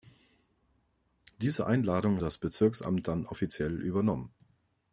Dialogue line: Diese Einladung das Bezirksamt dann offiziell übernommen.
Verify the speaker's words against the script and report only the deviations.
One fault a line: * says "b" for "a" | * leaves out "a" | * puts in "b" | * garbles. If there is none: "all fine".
all fine